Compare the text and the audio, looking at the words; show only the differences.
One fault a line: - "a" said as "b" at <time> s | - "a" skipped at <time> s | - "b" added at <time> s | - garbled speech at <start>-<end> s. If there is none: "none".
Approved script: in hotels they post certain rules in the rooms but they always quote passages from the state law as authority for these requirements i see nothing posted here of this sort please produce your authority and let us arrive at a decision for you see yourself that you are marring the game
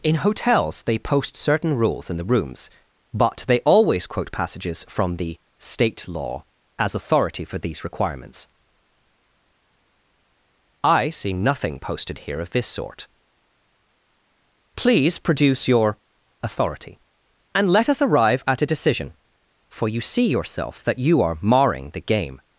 none